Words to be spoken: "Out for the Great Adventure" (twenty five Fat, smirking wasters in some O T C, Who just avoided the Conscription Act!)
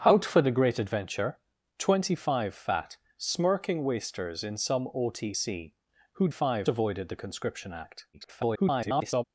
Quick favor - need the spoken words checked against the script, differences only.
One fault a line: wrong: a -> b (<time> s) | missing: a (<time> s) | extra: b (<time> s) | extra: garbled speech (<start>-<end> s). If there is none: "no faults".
wrong: just -> five (6.3 s)
extra: garbled speech (8.1-9.2 s)